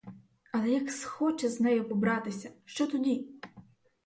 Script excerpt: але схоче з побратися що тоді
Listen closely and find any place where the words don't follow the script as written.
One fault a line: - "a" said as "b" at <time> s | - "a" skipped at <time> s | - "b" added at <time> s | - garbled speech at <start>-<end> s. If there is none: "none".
- "як" added at 0.7 s
- "нею" added at 1.6 s